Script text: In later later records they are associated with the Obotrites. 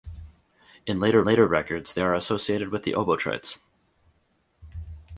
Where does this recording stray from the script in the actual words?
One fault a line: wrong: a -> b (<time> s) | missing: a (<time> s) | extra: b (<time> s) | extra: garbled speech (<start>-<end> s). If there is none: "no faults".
no faults